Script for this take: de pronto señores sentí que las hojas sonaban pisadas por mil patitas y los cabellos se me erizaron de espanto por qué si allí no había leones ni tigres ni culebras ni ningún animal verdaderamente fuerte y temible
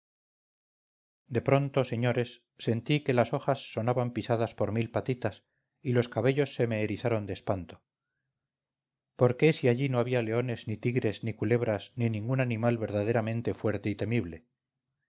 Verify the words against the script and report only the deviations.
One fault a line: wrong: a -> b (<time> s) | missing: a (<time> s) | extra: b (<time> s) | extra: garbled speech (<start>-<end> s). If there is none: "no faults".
no faults